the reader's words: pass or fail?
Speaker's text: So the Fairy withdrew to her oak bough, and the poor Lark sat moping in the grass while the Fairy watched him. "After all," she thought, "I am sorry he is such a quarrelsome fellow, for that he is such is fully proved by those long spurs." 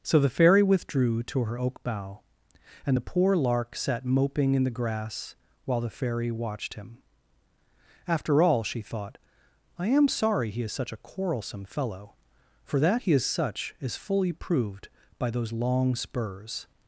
pass